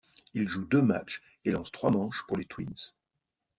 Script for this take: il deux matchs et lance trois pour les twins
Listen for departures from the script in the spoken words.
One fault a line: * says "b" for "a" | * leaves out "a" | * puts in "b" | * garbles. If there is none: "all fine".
* puts in "joue"
* puts in "manches"